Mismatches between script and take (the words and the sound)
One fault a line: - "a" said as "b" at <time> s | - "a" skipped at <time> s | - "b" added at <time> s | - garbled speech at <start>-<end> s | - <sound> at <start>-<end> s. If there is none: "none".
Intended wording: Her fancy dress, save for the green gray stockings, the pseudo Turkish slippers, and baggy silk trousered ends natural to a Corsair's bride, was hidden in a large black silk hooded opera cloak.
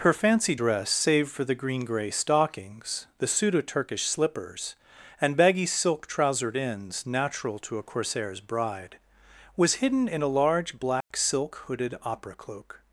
- dropout at 11.0-11.1 s